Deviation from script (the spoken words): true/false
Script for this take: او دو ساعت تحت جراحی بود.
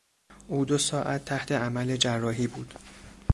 true